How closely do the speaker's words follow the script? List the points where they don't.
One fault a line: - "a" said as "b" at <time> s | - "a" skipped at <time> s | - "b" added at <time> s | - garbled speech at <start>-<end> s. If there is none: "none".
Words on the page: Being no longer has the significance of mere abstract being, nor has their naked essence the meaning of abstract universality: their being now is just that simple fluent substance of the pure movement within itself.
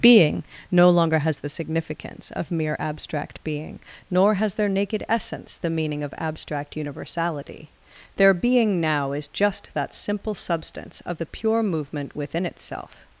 - "fluent" skipped at 10.3 s